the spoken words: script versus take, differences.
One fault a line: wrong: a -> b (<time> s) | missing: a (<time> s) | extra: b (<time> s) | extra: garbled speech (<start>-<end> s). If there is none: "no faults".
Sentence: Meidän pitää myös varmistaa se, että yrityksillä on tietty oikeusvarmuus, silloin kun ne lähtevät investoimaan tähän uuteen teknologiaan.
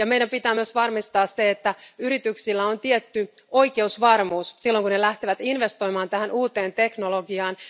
no faults